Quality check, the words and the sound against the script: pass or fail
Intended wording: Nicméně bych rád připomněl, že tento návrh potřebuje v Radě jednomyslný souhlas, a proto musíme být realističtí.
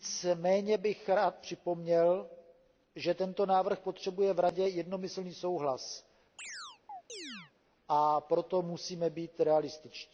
fail